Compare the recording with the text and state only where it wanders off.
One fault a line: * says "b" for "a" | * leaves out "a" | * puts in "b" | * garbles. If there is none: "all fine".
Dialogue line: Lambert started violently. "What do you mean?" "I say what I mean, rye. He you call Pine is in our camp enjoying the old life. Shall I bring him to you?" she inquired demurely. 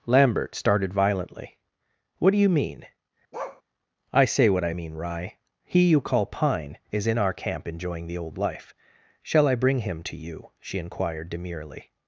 all fine